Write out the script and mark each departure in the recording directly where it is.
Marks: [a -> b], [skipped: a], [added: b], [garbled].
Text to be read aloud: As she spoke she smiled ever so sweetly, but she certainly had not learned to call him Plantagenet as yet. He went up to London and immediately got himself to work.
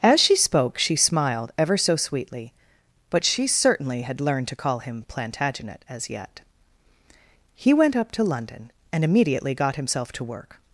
As she spoke she smiled ever so sweetly, but she certainly had [skipped: not] learned to call him Plantagenet as yet. He went up to London and immediately got himself to work.